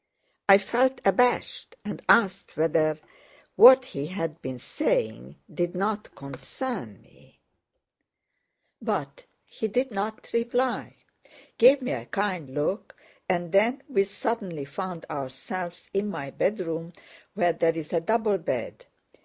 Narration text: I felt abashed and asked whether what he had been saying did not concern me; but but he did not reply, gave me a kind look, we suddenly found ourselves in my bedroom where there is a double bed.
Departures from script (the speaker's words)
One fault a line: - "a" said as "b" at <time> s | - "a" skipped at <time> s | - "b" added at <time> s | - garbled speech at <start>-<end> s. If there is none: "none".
- "but" skipped at 9.2 s
- "and then" added at 13.3 s